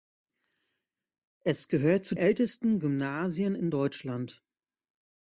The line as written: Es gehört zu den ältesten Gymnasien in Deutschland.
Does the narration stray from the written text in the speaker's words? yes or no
yes